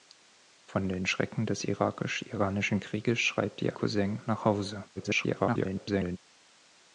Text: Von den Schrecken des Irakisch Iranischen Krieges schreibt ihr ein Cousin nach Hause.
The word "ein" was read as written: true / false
false